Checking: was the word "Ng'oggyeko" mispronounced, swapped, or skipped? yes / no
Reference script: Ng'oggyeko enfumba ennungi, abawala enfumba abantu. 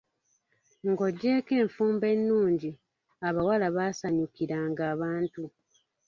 no